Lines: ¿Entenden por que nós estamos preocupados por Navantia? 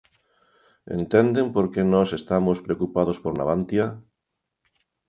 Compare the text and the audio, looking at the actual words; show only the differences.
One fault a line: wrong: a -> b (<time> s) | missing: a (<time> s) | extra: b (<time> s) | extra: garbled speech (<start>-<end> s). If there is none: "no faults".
no faults